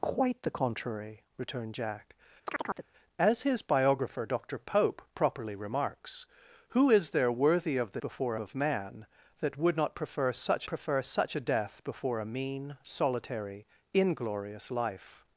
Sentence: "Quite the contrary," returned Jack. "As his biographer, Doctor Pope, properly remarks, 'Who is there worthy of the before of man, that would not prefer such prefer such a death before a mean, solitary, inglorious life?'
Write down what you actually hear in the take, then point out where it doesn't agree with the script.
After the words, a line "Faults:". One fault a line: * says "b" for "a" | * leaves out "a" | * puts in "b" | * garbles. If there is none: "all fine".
"Quite the contrary," returned Jack. "As his biographer, Doctor Pope, properly remarks, 'Who is there worthy of the before of man, that would not prefer such prefer such a death before a mean, solitary, inglorious life?'
Faults:
all fine